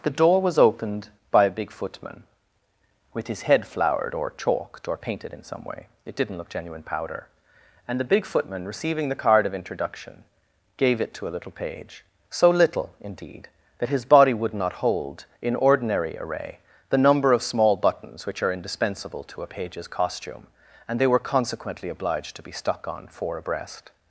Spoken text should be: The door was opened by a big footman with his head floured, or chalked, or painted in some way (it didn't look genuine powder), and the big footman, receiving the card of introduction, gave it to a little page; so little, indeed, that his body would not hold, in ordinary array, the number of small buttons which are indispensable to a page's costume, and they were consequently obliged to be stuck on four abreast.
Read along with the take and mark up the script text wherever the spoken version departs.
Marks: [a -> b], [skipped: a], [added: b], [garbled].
The door was opened by a big footman with his head floured, or chalked, or painted in some way (it didn't look genuine powder), and the big footman, receiving the card of introduction, gave it to a little page; so little, indeed, that his body would not hold, in ordinary array, the number of small buttons which are indispensable to a page's costume, and they were consequently obliged to be stuck on four abreast.